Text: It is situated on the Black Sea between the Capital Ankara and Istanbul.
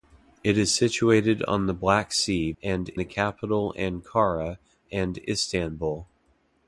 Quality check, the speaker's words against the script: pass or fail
fail